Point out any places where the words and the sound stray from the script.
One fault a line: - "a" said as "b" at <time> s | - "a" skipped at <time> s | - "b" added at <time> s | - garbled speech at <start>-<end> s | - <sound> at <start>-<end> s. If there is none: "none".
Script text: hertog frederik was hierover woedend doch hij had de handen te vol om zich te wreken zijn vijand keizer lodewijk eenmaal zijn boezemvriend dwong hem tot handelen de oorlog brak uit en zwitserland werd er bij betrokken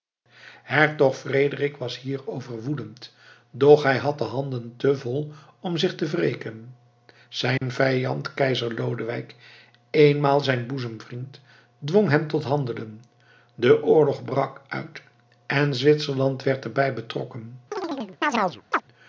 - dropout at 7.6-7.6 s
- chirp at 17.7-18.8 s